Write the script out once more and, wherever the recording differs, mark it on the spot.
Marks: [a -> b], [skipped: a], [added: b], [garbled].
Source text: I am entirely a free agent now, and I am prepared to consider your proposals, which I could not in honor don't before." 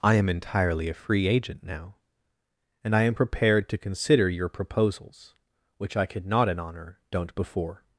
I am entirely a free agent now, and I am prepared to consider your proposals, which I could not in honor don't before."